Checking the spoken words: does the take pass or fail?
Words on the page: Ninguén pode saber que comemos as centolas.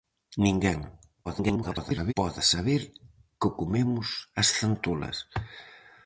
fail